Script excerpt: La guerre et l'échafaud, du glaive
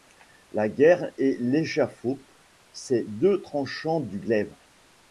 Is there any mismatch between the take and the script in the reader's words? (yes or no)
yes